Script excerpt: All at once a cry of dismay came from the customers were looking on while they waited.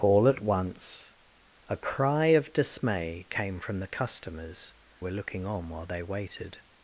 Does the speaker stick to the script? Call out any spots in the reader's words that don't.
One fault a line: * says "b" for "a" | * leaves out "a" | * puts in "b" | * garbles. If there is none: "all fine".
all fine